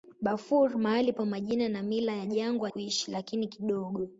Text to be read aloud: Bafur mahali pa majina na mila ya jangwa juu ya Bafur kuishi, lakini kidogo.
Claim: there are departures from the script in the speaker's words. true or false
true